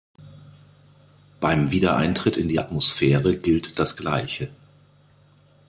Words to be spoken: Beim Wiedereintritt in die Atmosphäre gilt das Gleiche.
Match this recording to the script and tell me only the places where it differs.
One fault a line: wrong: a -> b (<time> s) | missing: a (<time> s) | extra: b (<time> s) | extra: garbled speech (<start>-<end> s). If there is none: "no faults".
no faults